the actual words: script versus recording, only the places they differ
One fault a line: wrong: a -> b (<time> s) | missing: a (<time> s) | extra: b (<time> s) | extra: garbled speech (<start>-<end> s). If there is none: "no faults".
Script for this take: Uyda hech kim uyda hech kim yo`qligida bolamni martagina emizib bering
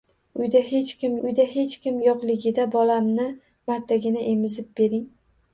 no faults